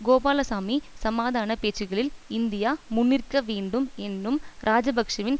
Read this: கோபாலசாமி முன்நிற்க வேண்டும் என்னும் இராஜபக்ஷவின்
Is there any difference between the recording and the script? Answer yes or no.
yes